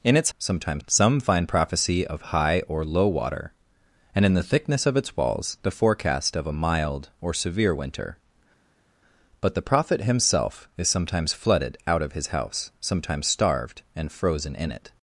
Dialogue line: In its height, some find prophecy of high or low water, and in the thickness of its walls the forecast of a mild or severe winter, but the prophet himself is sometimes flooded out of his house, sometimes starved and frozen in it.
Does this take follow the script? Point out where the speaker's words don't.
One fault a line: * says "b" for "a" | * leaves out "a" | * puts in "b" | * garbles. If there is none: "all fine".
* says "sometimes" for "height"